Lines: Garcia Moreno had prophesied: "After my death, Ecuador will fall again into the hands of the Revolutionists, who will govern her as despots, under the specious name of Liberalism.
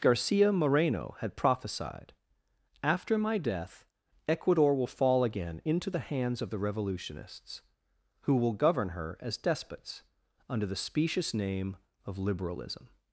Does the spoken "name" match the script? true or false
true